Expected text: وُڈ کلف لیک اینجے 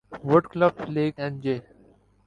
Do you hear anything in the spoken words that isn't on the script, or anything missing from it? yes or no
no